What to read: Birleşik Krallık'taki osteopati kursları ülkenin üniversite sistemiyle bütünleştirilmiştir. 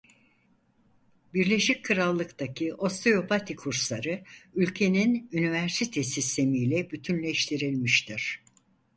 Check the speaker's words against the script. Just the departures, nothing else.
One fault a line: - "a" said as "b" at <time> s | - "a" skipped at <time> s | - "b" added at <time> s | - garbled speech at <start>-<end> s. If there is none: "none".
none